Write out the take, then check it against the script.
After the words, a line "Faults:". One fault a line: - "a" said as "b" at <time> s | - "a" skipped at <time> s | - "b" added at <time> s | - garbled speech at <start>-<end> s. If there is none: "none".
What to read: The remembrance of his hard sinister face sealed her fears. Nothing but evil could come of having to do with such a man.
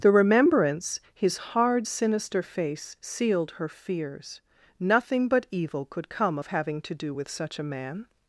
The remembrance his hard sinister face sealed her fears. Nothing but evil could come of having to do with such a man.
Faults:
- "of" skipped at 1.0 s